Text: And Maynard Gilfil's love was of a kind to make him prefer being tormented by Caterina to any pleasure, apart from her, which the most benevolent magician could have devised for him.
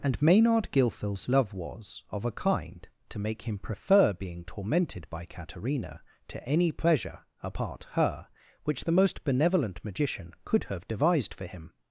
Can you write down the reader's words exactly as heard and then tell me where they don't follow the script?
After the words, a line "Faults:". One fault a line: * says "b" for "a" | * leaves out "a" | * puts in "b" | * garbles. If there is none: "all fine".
And Maynard Gilfil's love was of a kind to make him prefer being tormented by Caterina to any pleasure, apart her, which the most benevolent magician could have devised for him.
Faults:
* leaves out "from"